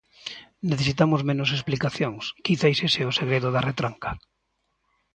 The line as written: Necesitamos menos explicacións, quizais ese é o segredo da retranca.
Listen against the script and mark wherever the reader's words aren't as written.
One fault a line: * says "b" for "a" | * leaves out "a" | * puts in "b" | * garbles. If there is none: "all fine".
all fine